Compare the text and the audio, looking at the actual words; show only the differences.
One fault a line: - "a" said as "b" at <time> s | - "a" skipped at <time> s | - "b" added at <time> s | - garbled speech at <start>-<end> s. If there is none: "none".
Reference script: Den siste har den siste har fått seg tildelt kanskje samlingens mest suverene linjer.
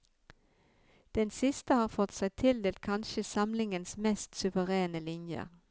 - "den siste har" skipped at 1.9 s